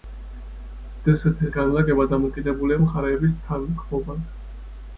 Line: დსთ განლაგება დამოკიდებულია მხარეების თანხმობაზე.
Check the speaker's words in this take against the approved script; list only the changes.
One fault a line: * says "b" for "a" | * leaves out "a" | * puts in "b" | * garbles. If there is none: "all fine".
all fine